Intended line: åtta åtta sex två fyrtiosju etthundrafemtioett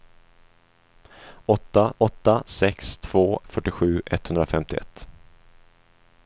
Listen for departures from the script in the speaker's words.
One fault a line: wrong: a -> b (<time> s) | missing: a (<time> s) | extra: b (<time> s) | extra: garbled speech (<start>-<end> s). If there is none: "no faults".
no faults